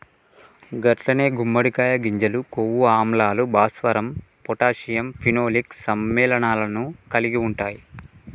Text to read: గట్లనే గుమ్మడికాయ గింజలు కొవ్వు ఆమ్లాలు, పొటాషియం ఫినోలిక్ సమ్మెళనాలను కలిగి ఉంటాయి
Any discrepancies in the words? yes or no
yes